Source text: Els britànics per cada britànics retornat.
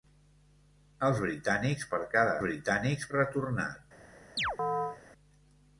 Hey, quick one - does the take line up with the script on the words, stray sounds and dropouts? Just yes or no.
no